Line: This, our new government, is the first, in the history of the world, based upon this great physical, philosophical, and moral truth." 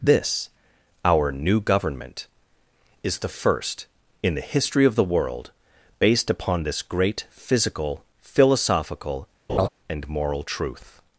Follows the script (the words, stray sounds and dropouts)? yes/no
no